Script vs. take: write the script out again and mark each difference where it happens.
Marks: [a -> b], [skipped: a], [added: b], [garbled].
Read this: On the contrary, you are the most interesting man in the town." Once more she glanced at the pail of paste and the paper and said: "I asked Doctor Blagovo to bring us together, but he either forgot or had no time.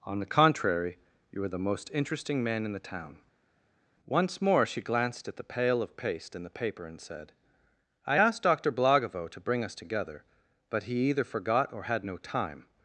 On the contrary, you are the most interesting man in the town." Once more she glanced at the pail of paste and the paper and said: "I asked Doctor Blagovo to bring us together, but he either forgot or had no time.